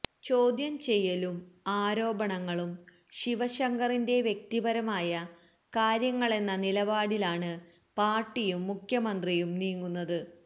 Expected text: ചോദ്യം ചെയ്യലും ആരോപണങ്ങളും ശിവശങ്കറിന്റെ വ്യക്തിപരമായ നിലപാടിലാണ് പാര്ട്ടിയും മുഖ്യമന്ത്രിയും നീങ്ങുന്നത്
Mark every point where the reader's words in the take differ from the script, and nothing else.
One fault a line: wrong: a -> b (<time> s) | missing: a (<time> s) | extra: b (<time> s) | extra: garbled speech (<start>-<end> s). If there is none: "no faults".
extra: കാര്യങ്ങളെന്ന (5.7 s)